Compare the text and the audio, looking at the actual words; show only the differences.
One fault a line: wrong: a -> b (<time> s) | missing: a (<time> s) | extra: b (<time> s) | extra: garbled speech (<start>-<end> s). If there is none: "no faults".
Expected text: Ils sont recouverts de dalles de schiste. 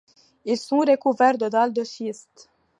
no faults